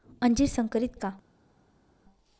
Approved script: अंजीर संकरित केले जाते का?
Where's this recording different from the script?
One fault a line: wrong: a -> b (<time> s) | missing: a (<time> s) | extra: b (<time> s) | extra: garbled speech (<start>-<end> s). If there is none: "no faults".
missing: केले जाते (0.9 s)